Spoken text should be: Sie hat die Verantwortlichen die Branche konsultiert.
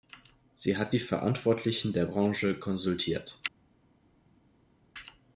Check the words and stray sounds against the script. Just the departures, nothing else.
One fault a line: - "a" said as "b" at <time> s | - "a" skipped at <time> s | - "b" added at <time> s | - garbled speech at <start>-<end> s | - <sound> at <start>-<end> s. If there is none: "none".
- "die" said as "der" at 1.9 s